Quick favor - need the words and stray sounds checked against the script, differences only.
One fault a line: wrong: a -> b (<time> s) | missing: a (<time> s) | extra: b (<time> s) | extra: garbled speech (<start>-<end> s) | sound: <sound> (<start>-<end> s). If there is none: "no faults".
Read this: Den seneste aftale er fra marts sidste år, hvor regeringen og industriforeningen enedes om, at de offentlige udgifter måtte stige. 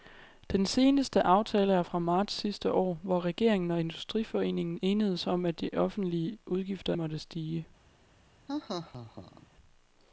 sound: laugh (8.5-9.5 s)